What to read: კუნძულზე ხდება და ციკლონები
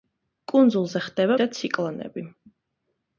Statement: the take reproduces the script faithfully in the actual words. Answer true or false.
true